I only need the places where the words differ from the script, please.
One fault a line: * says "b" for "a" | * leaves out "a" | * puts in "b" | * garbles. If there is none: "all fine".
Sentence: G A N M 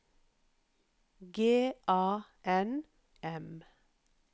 all fine